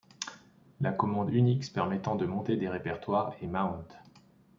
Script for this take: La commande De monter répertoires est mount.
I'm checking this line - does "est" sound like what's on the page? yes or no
yes